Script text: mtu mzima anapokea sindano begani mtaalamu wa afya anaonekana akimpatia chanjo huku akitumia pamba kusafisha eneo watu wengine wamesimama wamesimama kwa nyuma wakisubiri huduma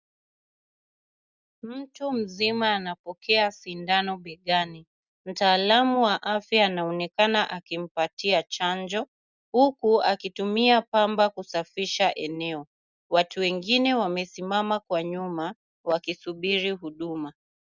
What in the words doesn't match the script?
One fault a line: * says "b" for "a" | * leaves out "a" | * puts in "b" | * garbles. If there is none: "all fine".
* leaves out "wamesimama"